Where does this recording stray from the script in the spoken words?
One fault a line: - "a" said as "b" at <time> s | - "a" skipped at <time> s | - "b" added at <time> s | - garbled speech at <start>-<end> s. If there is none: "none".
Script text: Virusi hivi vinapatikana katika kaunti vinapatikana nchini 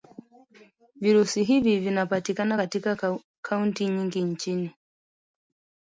- "vinapatikana" said as "nyingi" at 3.9 s